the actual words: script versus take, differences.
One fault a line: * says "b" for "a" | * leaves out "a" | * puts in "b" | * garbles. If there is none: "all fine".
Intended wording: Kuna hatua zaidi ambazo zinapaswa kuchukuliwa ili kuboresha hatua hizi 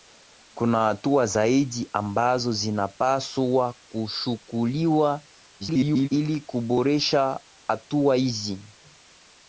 * garbles